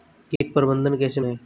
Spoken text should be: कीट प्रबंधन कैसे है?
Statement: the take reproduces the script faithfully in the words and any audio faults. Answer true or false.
false